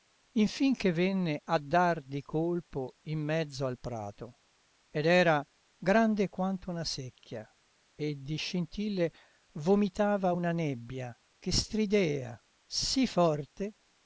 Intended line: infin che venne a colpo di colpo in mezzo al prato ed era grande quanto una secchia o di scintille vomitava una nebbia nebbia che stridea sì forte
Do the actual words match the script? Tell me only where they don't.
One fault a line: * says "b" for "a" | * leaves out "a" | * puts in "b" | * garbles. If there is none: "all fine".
* says "dar" for "colpo"
* says "e" for "o"
* leaves out "nebbia"